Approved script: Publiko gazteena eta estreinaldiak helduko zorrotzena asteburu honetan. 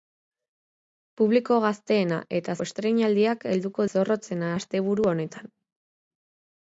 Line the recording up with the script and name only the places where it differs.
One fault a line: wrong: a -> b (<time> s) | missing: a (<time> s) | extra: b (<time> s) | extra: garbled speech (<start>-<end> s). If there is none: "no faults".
no faults